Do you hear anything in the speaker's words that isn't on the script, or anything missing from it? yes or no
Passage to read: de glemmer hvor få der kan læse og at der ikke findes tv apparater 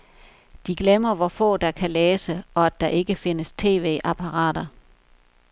no